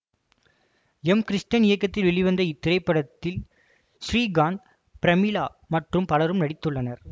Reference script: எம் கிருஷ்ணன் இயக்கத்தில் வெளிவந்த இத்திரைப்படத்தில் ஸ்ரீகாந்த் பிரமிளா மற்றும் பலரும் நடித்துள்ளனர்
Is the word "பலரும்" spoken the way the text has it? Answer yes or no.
yes